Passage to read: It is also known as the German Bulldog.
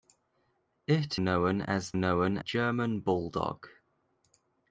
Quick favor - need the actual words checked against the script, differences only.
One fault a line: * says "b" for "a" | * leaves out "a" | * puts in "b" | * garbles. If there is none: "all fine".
* leaves out "is also"
* says "known" for "the"